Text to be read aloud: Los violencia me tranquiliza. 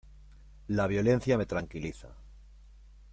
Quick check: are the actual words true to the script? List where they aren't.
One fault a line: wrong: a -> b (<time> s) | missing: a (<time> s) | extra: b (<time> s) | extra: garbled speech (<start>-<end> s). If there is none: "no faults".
wrong: Los -> La (0.7 s)